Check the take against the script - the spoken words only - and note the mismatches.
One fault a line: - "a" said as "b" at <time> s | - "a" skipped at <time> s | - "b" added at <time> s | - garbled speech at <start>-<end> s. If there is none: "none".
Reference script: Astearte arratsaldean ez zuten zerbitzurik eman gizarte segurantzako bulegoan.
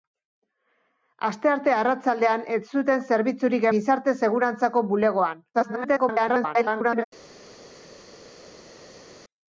- "eman" skipped at 3.7 s
- garbled speech at 5.5-7.0 s